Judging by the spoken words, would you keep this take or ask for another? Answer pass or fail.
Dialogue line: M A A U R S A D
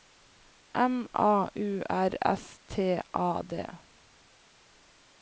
fail